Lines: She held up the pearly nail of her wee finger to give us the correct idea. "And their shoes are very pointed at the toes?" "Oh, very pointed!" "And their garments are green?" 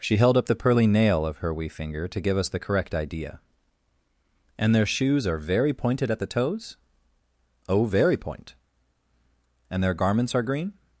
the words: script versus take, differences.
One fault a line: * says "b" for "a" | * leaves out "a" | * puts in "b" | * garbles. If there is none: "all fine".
* says "point" for "pointed"